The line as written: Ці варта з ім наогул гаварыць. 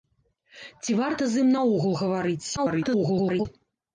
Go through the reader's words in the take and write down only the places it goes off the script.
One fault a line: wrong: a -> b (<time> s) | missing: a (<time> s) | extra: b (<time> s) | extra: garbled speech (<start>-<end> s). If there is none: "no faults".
extra: garbled speech (2.6-3.5 s)